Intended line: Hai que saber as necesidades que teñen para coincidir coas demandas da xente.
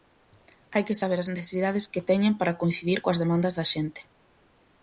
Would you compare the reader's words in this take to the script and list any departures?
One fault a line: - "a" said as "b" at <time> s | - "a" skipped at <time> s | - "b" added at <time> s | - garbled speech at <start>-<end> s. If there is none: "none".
none